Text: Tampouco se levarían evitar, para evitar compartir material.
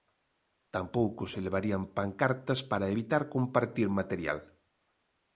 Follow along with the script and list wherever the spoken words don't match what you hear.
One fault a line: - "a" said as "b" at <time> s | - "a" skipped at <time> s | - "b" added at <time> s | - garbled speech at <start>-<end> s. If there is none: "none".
- "evitar" said as "pancartas" at 2.0 s